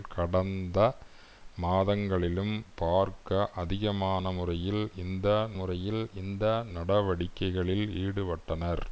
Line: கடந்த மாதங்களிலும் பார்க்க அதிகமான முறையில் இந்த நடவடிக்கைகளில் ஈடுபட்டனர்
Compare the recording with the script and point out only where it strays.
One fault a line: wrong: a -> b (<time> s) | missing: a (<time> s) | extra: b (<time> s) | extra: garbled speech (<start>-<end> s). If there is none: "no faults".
extra: முறையில் இந்த (5.5 s)